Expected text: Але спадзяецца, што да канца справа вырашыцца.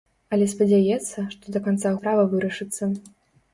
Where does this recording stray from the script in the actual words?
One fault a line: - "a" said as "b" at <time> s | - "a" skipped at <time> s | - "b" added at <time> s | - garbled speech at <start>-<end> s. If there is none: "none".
none